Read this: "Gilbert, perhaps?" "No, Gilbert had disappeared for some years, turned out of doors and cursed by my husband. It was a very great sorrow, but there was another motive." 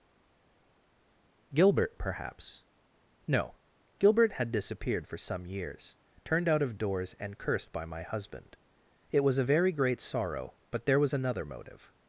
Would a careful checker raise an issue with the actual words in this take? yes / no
no